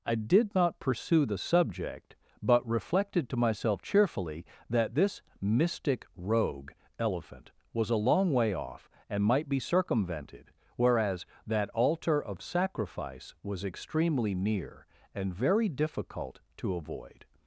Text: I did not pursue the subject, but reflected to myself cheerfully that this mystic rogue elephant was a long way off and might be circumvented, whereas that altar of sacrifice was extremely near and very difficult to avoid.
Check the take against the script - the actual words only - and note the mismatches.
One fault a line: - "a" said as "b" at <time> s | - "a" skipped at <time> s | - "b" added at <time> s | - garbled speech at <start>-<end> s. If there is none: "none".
none